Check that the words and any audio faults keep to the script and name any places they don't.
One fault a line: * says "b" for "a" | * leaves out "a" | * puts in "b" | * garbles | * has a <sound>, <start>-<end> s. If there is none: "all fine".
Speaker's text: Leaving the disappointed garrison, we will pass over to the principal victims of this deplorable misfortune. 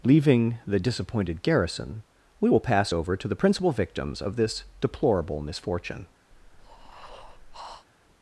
* has a breath, 6.3-7.9 s